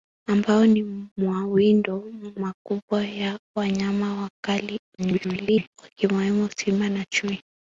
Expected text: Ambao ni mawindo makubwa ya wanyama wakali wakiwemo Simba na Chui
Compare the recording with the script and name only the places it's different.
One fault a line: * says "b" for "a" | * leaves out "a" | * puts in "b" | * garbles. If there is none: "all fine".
* garbles